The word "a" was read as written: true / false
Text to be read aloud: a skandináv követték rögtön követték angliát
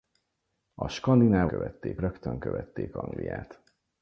true